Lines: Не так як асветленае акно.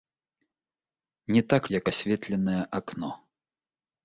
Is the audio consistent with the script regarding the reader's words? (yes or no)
yes